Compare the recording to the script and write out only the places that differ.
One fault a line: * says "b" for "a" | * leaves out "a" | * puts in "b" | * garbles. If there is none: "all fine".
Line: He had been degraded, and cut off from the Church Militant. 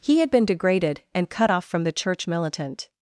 all fine